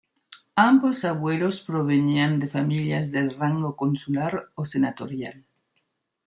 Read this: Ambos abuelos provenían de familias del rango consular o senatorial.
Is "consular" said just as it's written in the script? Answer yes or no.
yes